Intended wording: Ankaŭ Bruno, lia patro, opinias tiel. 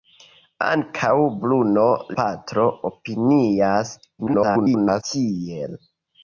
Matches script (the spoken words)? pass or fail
fail